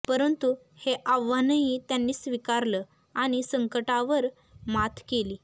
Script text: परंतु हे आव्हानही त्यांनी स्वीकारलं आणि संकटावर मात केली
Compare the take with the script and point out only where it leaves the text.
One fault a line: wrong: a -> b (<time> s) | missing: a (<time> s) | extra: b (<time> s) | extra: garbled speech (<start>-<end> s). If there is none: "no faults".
no faults